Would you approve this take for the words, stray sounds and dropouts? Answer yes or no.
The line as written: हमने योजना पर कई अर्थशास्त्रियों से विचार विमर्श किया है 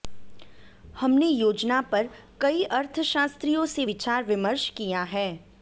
yes